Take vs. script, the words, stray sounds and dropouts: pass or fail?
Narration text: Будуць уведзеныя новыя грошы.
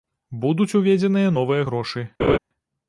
fail